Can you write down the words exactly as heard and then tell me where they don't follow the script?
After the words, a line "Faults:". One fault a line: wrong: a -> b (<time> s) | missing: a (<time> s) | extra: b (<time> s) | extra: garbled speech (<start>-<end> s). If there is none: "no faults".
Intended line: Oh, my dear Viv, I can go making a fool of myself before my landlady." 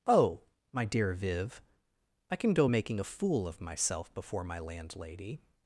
Oh, my dear Viv, I can go making a fool of myself before my landlady."
Faults:
no faults